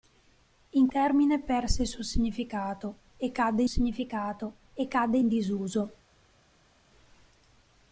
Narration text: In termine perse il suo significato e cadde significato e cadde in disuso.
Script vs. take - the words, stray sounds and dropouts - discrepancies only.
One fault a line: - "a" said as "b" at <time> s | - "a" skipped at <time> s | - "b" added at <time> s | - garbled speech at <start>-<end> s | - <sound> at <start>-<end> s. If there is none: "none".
none